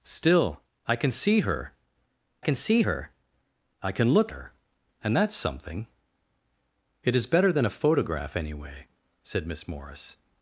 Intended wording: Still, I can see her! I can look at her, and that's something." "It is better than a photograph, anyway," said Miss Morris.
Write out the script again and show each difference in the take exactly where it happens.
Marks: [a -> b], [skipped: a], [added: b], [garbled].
Still, I can see her! [added: can see her] I can look [skipped: at] her, and that's something." "It is better than a photograph, anyway," said Miss Morris.